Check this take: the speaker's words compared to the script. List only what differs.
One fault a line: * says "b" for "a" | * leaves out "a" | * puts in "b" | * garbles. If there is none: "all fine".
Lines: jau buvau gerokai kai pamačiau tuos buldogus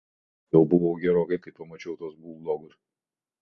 all fine